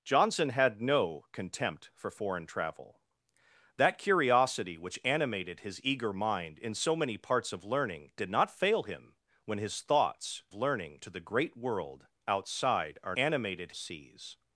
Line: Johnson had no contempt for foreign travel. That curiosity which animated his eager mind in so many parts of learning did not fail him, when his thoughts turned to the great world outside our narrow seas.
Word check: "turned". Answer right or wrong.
wrong